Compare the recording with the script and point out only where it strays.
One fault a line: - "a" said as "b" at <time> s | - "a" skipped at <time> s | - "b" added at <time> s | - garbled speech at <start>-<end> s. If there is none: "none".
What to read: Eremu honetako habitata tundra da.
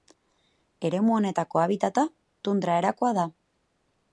- "erakoa" added at 2.8 s